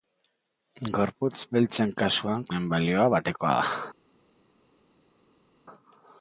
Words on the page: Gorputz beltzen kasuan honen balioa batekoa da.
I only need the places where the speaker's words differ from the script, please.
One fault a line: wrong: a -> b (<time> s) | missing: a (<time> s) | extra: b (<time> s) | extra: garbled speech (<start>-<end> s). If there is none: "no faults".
no faults